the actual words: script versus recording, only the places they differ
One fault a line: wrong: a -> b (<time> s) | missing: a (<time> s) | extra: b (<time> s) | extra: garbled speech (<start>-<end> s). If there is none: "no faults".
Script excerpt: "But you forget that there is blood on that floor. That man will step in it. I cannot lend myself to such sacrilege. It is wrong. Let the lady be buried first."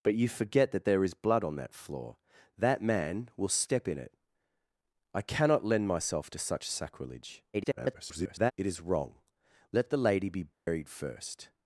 extra: garbled speech (7.5-8.5 s)